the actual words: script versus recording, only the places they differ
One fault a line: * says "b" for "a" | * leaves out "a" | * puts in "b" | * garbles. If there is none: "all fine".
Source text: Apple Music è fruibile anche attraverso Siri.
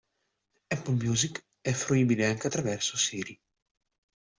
all fine